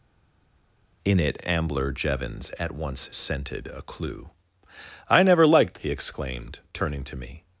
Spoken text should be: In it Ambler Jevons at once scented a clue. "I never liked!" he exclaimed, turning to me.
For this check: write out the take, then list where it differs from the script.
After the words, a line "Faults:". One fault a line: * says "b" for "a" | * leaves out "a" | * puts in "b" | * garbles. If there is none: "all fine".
In it Ambler Jevons at once scented a clue. "I never liked!" he exclaimed, turning to me.
Faults:
all fine